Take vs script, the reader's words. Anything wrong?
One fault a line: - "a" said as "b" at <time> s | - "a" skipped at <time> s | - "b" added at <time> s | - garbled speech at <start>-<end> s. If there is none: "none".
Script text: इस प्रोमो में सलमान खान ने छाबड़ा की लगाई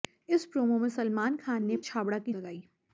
none